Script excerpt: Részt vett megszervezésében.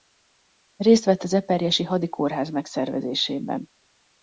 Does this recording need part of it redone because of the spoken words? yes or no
yes